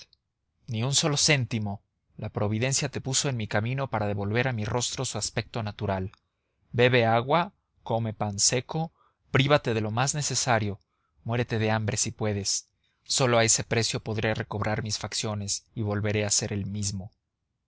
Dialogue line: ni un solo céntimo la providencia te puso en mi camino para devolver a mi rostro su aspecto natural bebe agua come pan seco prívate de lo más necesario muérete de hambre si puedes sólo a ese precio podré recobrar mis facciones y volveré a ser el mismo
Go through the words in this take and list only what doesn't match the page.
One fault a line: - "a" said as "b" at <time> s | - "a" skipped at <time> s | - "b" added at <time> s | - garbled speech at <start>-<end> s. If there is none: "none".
none